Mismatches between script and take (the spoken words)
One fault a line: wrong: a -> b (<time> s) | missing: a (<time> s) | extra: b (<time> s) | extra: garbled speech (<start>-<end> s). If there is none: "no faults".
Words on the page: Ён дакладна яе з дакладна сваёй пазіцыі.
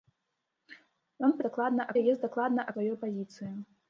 no faults